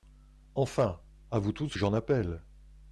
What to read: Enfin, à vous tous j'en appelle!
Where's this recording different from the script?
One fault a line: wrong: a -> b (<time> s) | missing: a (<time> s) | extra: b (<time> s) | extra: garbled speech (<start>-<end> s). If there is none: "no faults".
no faults